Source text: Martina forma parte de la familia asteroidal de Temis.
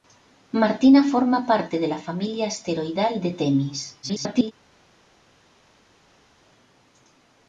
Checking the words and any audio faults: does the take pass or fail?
fail